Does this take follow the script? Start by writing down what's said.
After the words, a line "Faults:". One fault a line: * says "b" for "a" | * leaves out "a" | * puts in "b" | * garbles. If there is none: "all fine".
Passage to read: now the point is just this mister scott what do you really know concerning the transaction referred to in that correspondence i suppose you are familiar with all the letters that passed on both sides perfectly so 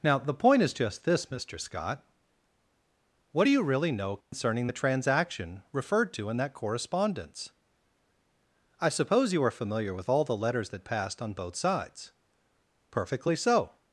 now the point is just this mister scott what do you really know concerning the transaction referred to in that correspondence i suppose you are familiar with all the letters that passed on both sides perfectly so
Faults:
all fine